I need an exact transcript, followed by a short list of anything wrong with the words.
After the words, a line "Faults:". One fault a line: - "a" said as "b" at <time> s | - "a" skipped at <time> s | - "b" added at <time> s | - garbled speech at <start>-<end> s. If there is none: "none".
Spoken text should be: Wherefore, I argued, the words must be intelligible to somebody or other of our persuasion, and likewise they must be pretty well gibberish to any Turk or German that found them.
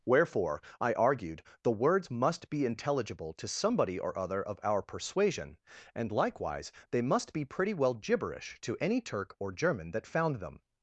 Wherefore, I argued, the words must be intelligible to somebody or other of our persuasion, and likewise they must be pretty well gibberish to any Turk or German that found them.
Faults:
none